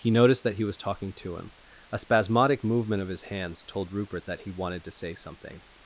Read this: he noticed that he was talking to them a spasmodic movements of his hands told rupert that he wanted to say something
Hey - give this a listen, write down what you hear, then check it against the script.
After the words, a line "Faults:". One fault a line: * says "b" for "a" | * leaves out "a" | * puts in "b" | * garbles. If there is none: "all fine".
he noticed that he was talking to him a spasmodic movement of his hands told rupert that he wanted to say something
Faults:
* says "him" for "them"
* says "movement" for "movements"